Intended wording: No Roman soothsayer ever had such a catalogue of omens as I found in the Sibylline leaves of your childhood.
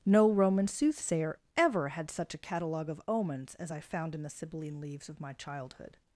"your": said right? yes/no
no